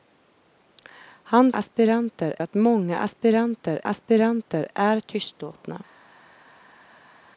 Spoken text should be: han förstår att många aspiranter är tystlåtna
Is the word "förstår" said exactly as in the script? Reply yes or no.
no